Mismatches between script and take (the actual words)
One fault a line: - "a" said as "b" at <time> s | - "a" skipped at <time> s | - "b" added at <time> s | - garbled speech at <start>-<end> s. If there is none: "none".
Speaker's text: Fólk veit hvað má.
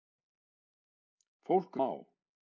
- "veit hvað" skipped at 1.8 s